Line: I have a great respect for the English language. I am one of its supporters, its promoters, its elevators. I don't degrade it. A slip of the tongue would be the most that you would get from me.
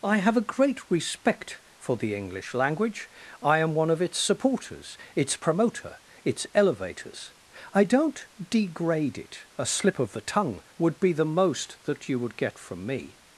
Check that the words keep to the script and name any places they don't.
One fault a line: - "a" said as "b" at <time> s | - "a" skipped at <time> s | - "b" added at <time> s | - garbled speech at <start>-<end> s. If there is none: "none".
- "promoters" said as "promoter" at 5.3 s